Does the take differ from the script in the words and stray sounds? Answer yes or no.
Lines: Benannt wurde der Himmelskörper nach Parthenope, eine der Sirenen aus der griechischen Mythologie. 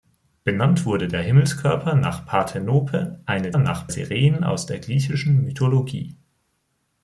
yes